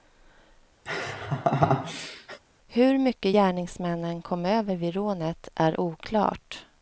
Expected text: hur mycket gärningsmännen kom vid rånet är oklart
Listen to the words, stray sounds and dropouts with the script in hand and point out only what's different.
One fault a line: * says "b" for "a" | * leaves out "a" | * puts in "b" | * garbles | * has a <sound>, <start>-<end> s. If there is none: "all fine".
* has a laugh, 0.9-2.4 s
* puts in "över"